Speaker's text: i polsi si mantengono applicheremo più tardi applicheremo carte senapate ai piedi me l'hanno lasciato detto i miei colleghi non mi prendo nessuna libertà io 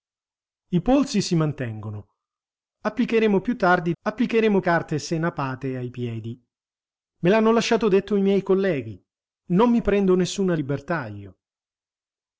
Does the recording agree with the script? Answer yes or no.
yes